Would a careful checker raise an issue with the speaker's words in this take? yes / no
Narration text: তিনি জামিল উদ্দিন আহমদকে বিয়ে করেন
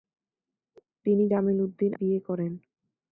yes